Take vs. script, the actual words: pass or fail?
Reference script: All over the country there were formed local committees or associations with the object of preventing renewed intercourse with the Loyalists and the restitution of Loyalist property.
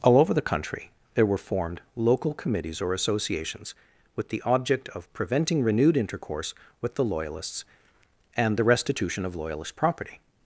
pass